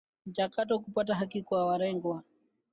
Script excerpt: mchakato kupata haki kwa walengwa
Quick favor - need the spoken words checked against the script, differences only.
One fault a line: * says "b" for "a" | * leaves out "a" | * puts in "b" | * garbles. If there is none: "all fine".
all fine